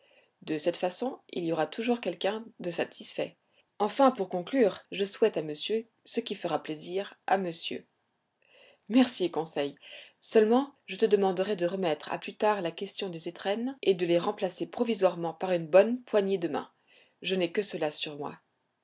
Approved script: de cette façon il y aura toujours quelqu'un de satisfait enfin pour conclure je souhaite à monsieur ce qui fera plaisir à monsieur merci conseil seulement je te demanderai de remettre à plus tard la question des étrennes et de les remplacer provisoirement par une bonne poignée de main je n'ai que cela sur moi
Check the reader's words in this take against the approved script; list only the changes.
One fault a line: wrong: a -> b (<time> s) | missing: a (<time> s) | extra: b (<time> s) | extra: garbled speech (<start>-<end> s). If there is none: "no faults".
no faults